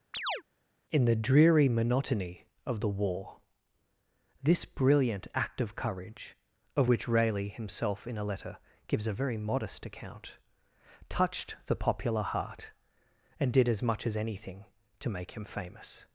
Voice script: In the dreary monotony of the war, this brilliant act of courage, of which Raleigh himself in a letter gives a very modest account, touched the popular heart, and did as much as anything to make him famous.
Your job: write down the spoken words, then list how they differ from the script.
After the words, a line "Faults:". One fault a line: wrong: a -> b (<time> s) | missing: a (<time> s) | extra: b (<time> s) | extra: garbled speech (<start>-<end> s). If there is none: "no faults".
In the dreary monotony of the war, this brilliant act of courage, of which Raleigh himself in a letter gives a very modest account, touched the popular heart, and did as much as anything to make him famous.
Faults:
no faults